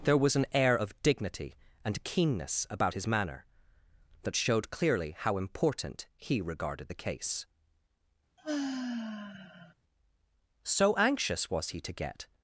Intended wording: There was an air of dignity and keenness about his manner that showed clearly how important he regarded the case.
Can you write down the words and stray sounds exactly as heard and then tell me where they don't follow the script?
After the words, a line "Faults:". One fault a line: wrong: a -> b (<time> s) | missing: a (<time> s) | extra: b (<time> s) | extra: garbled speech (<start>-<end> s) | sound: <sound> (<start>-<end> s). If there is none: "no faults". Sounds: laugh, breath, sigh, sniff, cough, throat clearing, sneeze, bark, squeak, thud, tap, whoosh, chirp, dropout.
There was an air of dignity and keenness about his manner that showed clearly how important he regarded the case. So anxious was he to get
Faults:
sound: sigh (8.4-9.7 s)
extra: So anxious was he to get (10.6 s)